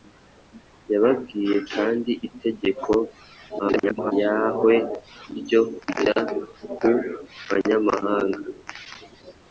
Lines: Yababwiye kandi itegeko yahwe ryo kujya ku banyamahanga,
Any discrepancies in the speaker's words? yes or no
yes